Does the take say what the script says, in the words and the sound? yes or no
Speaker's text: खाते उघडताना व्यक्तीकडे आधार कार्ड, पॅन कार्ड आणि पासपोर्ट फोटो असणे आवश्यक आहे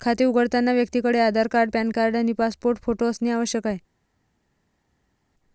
yes